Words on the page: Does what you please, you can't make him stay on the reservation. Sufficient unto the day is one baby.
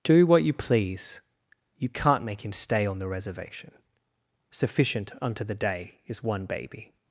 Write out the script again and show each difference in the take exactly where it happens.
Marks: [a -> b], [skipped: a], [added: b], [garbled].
[Does -> Do] what you please, you can't make him stay on the reservation. Sufficient unto the day is one baby.